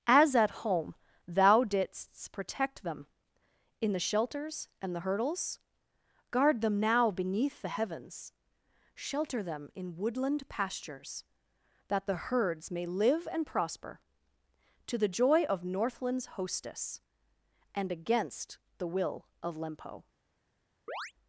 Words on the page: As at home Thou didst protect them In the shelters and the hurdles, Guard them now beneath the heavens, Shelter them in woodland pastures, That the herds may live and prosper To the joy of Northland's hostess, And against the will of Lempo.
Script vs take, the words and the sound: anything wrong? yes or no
yes